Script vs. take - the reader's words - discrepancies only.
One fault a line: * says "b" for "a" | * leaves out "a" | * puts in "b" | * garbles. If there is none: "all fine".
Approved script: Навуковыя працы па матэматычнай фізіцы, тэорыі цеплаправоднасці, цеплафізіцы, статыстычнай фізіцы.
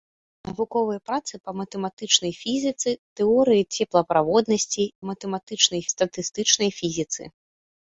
* says "матэматычнай" for "цеплафізіцы"